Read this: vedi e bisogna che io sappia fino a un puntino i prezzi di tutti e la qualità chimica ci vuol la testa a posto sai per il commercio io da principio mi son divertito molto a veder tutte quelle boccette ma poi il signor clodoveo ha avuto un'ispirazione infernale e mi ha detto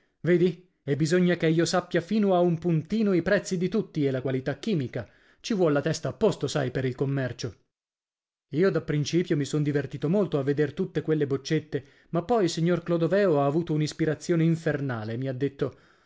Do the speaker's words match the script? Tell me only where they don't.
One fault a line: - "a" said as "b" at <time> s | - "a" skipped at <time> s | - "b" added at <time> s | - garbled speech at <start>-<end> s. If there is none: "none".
none